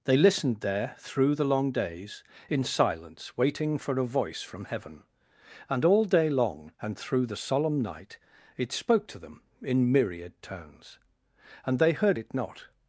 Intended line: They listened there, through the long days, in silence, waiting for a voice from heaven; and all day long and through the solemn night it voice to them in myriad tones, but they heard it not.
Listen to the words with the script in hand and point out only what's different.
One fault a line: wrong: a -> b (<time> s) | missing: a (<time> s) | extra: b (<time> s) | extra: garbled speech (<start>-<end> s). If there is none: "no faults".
wrong: voice -> spoke (8.7 s)
wrong: but -> and (11.7 s)